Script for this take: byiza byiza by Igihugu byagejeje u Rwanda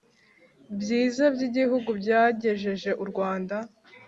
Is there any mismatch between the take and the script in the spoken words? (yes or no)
yes